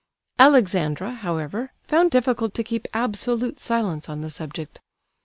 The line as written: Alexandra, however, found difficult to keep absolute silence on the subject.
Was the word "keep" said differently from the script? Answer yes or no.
no